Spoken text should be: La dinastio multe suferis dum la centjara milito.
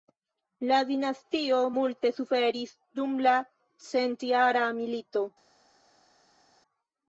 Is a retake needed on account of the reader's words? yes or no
no